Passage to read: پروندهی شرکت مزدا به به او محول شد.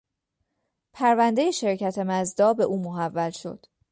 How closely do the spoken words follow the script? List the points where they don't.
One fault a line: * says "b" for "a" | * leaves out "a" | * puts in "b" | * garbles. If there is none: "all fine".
* leaves out "به"